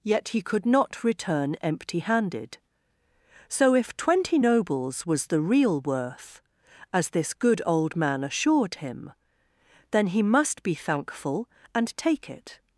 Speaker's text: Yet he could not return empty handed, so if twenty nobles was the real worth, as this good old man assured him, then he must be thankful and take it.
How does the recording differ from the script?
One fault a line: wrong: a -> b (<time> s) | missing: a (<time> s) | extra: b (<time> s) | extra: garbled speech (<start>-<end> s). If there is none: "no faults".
no faults